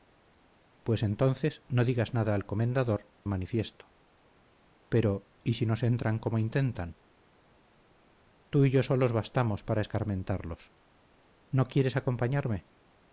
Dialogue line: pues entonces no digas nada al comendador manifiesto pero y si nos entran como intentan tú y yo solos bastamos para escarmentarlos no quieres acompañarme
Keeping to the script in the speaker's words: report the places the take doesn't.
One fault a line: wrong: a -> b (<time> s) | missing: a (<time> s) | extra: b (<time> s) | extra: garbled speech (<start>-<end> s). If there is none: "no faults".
no faults